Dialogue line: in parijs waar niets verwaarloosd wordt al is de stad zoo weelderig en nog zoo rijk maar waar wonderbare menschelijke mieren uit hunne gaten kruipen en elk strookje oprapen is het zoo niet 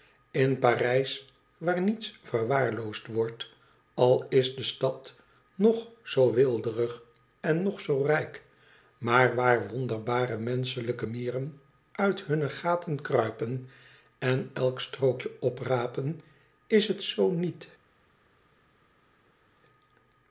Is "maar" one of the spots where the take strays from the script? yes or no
no